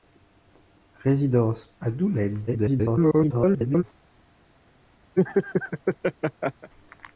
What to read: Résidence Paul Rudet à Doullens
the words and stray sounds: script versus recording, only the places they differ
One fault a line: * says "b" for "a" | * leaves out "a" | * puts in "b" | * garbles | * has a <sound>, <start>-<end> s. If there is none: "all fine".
* leaves out "Paul Rudet"
* garbles
* has a laugh, 5.2-6.7 s